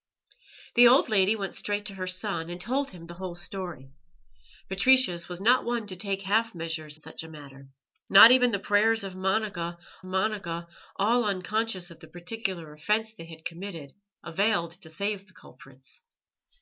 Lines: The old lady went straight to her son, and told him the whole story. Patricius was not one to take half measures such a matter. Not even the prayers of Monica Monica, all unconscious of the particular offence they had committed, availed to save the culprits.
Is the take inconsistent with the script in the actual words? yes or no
no